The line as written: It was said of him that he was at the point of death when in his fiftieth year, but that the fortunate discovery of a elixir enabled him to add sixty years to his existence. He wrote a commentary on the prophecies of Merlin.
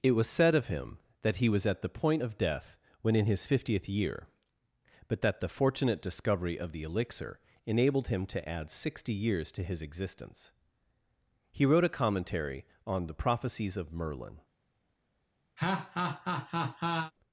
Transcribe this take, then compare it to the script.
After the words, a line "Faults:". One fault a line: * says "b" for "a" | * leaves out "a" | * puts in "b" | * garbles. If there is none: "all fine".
It was said of him that he was at the point of death when in his fiftieth year, but that the fortunate discovery of the elixir enabled him to add sixty years to his existence. He wrote a commentary on the prophecies of Merlin.
Faults:
* says "the" for "a"